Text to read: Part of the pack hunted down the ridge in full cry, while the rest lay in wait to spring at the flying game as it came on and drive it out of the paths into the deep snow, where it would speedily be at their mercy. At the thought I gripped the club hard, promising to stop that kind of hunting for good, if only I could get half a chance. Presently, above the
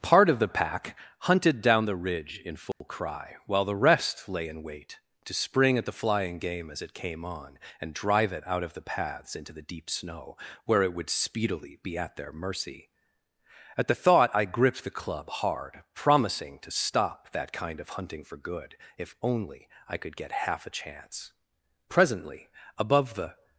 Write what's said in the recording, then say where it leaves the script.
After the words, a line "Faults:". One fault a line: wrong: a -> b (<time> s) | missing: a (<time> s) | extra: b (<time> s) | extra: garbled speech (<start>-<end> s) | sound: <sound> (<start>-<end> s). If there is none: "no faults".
Part of the pack hunted down the ridge in full cry, while the rest lay in wait to spring at the flying game as it came on and drive it out of the paths into the deep snow, where it would speedily be at their mercy. At the thought I gripped the club hard, promising to stop that kind of hunting for good, if only I could get half a chance. Presently, above the
Faults:
sound: dropout (2.7-2.8 s)